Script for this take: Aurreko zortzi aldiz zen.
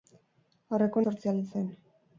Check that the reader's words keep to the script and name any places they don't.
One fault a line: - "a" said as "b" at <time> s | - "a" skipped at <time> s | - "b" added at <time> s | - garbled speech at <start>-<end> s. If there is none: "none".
none